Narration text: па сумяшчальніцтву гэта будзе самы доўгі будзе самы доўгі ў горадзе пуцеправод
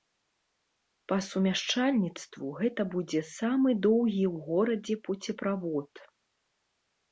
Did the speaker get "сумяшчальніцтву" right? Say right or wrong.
right